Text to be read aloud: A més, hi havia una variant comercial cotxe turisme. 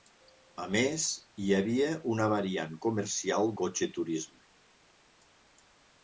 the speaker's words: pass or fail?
pass